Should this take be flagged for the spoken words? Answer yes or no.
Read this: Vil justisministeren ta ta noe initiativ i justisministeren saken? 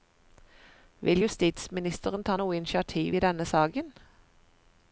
yes